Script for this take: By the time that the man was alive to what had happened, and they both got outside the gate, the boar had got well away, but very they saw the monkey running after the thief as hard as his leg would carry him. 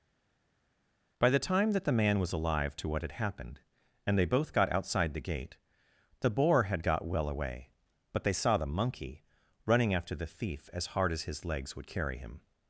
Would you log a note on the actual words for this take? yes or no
yes